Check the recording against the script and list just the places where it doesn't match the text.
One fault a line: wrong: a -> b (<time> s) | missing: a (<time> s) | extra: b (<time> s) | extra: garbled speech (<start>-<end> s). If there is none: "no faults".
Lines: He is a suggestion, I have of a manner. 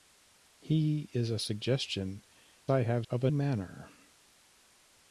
no faults